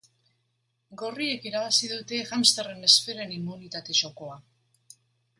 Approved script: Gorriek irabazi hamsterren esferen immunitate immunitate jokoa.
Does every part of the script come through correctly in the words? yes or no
no